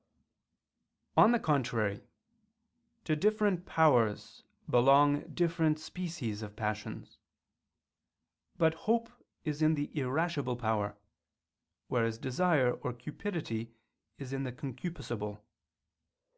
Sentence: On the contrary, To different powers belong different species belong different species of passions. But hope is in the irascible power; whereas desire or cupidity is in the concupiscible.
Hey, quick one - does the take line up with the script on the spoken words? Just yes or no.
no